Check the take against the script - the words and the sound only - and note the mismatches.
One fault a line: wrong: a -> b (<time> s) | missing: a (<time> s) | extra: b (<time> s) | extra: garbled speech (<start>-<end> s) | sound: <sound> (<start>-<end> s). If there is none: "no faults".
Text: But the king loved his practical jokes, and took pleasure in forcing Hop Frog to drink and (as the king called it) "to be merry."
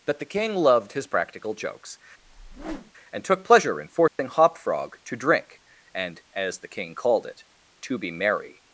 wrong: But -> That (0.1 s)
sound: whoosh (2.2-2.9 s)
sound: dropout (4.1-4.2 s)